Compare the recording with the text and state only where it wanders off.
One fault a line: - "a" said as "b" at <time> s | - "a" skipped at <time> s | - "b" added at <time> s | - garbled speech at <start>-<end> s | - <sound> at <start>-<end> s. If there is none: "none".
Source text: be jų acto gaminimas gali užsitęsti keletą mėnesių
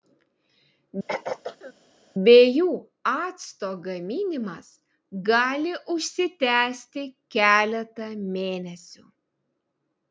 - throat clearing at 1.1-1.7 s